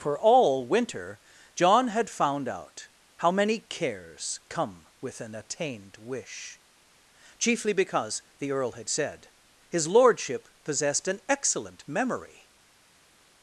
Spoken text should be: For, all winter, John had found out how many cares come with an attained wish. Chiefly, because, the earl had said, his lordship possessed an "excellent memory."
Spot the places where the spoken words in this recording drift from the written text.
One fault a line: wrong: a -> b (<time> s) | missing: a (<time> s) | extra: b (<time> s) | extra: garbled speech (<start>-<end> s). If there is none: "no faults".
no faults